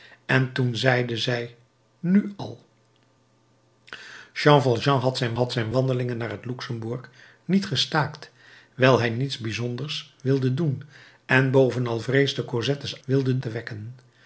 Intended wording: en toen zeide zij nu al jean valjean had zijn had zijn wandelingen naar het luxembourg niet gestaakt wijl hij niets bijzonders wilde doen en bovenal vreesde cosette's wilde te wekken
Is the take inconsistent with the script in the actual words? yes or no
no